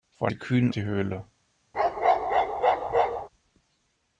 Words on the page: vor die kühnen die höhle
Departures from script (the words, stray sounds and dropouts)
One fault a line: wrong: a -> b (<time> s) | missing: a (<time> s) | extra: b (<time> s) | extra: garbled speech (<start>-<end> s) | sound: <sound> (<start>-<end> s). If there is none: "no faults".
sound: bark (1.7-3.3 s)